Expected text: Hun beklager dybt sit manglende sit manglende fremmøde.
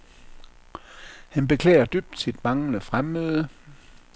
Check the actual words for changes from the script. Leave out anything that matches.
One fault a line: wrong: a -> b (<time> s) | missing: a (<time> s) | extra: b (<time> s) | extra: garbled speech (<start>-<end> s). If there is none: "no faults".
wrong: Hun -> Han (1.3 s)
missing: sit manglende (2.8 s)